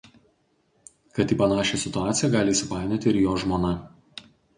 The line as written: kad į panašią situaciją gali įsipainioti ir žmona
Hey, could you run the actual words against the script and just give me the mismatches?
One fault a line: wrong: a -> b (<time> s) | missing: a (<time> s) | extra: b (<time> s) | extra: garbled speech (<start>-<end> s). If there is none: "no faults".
extra: jo (3.2 s)